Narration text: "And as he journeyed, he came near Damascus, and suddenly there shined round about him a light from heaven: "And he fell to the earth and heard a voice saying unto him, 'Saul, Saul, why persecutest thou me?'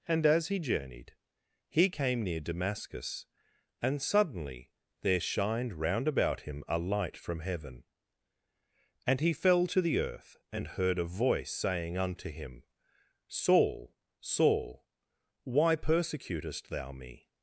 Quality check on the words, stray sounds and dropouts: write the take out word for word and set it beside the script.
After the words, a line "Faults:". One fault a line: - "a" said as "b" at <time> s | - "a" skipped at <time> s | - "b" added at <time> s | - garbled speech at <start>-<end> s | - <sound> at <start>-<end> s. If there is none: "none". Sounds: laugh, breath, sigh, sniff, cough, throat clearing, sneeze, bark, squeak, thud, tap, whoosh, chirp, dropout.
"And as he journeyed, he came near Damascus, and suddenly there shined round about him a light from heaven: "And he fell to the earth and heard a voice saying unto him, 'Saul, Saul, why persecutest thou me?'
Faults:
none